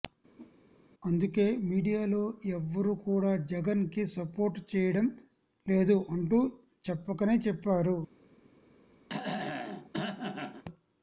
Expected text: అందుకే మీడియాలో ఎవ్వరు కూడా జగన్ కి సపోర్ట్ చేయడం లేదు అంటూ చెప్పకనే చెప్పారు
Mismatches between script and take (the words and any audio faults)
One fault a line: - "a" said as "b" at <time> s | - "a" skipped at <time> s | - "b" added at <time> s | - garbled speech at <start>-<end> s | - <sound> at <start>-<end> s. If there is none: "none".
- whoosh at 0.4-0.6 s
- throat clearing at 9.1-10.6 s